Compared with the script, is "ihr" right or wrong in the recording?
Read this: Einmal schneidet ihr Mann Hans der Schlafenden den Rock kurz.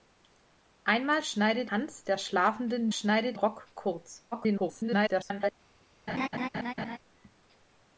wrong